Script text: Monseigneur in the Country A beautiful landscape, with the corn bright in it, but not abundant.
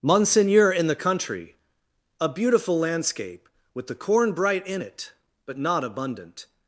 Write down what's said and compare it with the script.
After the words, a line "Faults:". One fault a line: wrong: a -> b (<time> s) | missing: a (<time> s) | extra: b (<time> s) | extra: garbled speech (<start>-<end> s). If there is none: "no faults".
Monseigneur in the Country A beautiful landscape, with the corn bright in it, but not abundant.
Faults:
no faults